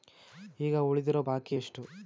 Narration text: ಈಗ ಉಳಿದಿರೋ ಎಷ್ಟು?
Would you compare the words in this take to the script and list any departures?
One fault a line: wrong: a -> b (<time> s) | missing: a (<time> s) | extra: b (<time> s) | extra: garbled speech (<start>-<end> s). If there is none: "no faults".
extra: ಬಾಕಿ (1.2 s)